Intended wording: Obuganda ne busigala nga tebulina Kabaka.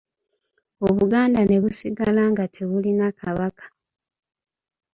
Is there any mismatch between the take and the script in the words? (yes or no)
no